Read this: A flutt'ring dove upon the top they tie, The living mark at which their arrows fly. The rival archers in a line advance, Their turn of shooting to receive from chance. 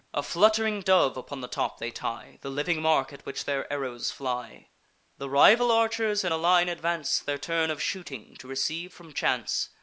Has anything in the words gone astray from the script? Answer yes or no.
no